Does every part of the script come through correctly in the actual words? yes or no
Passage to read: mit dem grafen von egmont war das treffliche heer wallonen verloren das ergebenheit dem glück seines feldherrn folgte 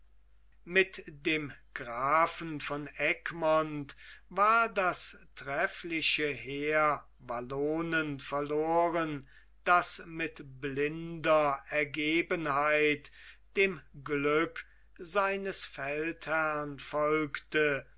no